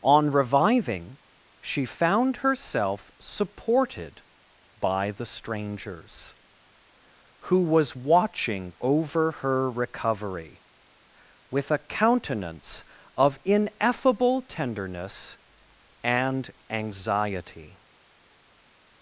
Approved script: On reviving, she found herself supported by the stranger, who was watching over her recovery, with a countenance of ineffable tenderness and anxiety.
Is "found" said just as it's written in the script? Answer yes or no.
yes